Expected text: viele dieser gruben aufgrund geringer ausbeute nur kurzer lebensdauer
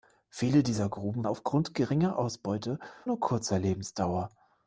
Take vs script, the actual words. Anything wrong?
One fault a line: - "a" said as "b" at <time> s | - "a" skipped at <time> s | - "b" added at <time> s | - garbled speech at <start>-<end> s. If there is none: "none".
none